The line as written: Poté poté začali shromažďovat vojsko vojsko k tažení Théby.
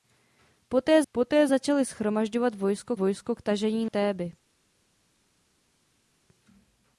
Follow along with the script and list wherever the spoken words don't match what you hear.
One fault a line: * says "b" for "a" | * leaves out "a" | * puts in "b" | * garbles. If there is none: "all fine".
all fine